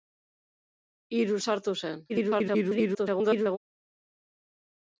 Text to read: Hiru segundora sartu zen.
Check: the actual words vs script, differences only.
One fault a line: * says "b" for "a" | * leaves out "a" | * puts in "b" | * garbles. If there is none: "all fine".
* leaves out "segundora"
* garbles